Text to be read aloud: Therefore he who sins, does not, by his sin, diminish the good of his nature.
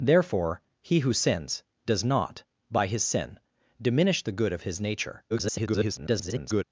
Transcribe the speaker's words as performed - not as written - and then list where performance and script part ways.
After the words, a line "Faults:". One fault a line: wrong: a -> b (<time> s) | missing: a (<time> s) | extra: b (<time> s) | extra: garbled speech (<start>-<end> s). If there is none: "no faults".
Therefore he who sins, does not, by his sin, diminish the good of his nature. [garbled]
Faults:
extra: garbled speech (5.3-6.6 s)